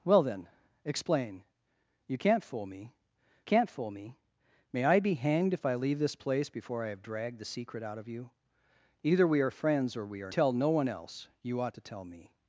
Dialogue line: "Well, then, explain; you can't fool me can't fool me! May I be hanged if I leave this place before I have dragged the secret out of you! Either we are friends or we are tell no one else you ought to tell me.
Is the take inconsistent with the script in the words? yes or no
no